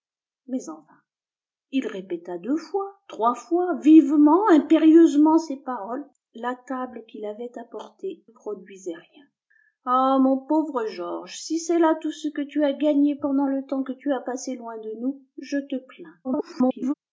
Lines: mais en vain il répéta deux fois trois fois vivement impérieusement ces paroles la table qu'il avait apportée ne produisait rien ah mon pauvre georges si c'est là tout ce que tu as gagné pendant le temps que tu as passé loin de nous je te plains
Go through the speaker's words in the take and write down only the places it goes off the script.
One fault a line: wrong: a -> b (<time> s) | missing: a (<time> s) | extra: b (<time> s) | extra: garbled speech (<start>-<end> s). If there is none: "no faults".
missing: ne (8.2 s)
extra: garbled speech (16.2-16.9 s)